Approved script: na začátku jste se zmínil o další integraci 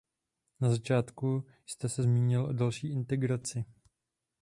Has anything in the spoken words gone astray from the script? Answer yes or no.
no